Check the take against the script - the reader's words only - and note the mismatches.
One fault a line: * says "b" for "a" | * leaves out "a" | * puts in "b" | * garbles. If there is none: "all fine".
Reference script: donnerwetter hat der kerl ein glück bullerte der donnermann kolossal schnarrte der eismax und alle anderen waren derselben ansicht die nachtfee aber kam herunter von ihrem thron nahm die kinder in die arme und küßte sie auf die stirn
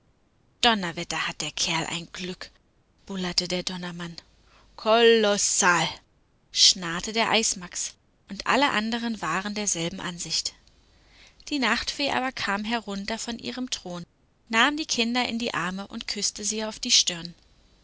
all fine